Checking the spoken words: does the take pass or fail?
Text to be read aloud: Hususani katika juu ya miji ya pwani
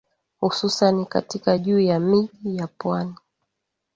pass